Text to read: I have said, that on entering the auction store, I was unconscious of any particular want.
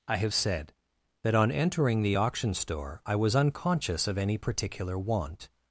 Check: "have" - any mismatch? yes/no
no